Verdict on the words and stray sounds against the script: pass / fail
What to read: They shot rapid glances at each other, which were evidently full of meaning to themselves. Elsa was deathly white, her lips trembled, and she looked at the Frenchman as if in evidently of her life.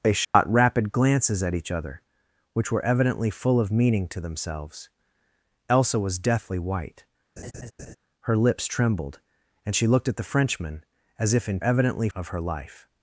fail